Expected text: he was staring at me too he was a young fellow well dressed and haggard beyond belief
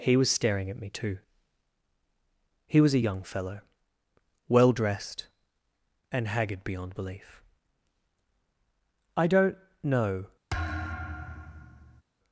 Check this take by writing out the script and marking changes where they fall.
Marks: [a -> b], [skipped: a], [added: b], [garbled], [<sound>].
he was staring at me too he was a young fellow well dressed and haggard beyond belief [added: i don't know] [thud]